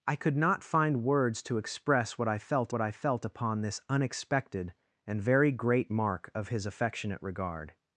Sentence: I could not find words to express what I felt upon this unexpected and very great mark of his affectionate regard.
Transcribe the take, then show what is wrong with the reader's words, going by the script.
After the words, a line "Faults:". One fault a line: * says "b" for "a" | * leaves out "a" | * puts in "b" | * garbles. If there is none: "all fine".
I could not find words to express what I felt what I felt upon this unexpected and very great mark of his affectionate regard.
Faults:
* puts in "what I felt"